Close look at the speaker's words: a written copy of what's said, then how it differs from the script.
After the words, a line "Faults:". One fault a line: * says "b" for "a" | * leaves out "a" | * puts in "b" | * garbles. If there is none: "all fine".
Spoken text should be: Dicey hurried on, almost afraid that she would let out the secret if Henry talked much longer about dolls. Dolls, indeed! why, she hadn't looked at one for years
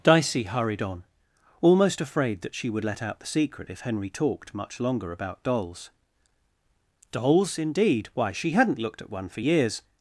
Dicey hurried on, almost afraid that she would let out the secret if Henry talked much longer about dolls. Dolls, indeed! why, she hadn't looked at one for years
Faults:
all fine